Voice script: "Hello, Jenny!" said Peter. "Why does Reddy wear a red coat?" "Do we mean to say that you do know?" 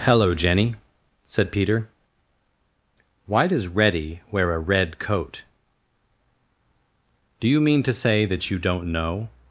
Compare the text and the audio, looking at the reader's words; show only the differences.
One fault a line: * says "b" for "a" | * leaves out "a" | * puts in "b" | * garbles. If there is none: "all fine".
* says "you" for "we"
* says "don't" for "do"